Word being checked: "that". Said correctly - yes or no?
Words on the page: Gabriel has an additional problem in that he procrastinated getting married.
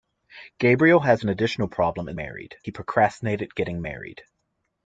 no